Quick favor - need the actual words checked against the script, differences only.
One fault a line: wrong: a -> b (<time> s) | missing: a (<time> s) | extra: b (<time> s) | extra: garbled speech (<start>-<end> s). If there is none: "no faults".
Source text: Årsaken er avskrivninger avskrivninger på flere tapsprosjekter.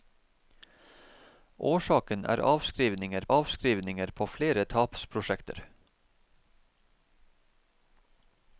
no faults